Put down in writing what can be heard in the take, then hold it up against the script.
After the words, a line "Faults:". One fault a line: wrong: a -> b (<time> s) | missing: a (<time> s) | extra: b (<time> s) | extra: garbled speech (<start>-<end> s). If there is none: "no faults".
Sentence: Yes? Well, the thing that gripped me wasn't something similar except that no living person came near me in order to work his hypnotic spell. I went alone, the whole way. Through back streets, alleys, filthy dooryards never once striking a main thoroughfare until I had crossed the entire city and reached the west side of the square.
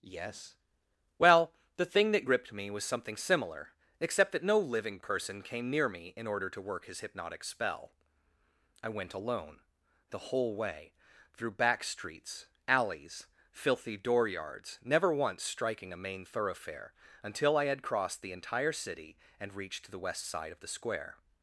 Yes? Well, the thing that gripped me was something similar except that no living person came near me in order to work his hypnotic spell. I went alone, the whole way. Through back streets, alleys, filthy dooryards never once striking a main thoroughfare until I had crossed the entire city and reached the west side of the square.
Faults:
wrong: wasn't -> was (2.7 s)